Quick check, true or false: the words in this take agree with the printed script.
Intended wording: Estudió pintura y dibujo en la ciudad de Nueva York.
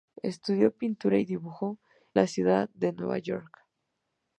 false